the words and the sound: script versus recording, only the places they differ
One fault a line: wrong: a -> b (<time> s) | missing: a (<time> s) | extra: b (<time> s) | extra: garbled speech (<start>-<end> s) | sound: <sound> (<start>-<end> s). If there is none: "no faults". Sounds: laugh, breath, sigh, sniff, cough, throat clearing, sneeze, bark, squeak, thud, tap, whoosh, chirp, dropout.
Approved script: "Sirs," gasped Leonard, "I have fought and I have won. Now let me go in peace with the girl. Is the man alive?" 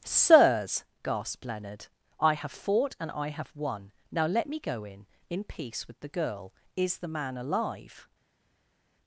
extra: in (5.3 s)